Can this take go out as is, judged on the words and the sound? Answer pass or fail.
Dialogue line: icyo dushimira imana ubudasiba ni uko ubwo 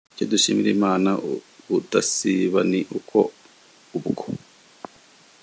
pass